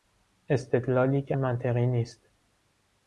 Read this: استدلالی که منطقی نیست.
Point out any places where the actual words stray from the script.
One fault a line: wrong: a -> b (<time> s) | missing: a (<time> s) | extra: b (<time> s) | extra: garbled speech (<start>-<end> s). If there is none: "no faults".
no faults